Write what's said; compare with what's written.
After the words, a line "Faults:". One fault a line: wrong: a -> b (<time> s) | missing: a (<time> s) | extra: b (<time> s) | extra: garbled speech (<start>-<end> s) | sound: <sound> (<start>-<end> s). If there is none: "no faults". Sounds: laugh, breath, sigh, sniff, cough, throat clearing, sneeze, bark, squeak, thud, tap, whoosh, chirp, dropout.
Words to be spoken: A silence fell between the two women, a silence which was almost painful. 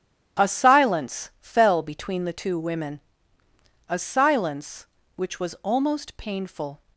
A silence fell between the two women, a silence which was almost painful.
Faults:
no faults